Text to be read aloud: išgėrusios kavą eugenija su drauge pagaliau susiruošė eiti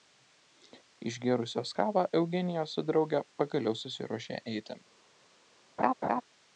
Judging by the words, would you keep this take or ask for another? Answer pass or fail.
pass